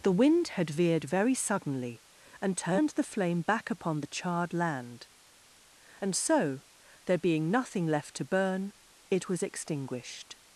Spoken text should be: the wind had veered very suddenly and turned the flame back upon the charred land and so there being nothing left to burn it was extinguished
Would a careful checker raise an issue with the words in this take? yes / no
no